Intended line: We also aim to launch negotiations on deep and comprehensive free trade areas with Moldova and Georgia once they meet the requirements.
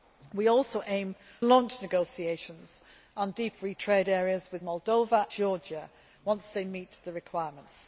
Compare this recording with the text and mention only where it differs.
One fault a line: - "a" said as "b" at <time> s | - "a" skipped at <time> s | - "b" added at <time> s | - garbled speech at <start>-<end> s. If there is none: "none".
- "to" skipped at 1.1 s
- "and comprehensive" skipped at 3.5 s
- "and" skipped at 5.2 s